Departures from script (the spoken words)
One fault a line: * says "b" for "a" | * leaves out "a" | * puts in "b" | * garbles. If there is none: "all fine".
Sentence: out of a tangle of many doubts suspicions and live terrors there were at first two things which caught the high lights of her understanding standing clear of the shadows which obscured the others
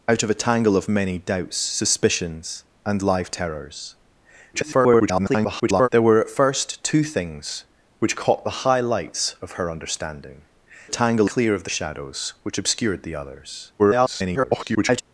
* garbles
* says "tangle" for "standing"
* garbles